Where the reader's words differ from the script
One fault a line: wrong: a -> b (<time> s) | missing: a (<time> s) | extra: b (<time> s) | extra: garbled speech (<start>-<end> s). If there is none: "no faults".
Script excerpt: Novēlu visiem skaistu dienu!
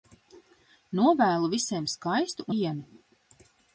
no faults